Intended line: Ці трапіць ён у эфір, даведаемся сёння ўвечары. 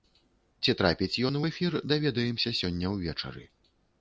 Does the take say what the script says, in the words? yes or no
yes